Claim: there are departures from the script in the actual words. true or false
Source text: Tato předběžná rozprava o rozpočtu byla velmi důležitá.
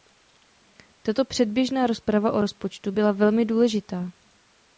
false